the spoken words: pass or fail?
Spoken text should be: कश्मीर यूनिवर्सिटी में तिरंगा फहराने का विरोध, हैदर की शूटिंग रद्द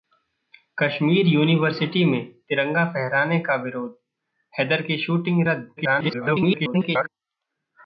fail